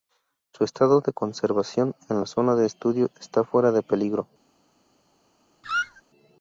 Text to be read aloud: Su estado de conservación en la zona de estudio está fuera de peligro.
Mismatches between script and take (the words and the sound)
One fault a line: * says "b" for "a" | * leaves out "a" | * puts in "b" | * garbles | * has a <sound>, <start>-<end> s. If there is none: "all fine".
* has a squeak, 5.6-6.0 s